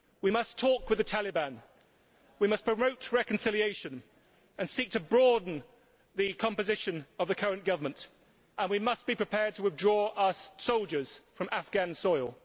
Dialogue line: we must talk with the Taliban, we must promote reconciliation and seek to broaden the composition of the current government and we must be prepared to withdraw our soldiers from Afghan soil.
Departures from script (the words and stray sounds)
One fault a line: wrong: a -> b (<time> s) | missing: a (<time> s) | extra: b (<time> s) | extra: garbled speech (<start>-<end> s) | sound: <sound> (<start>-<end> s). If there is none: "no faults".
no faults